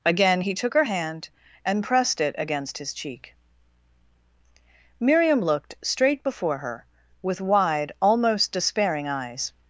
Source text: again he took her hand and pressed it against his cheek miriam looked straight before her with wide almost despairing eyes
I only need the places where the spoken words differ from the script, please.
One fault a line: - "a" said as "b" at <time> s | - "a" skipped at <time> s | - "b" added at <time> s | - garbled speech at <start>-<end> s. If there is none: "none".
none